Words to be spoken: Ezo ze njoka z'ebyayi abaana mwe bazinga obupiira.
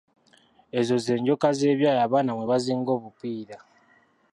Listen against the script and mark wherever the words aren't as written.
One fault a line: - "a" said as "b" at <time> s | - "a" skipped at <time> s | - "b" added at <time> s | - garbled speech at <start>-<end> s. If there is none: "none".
none